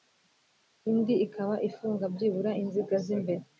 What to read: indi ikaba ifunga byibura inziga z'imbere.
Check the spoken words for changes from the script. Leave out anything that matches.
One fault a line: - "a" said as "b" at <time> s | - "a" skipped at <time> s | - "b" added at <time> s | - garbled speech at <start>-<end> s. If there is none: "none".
none